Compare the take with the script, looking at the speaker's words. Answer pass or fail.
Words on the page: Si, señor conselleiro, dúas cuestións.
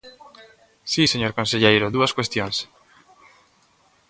pass